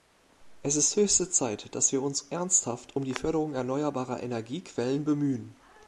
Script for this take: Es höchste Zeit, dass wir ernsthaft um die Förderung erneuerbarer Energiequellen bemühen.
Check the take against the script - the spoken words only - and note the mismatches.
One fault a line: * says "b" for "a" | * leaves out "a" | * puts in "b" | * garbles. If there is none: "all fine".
* puts in "ist"
* puts in "uns"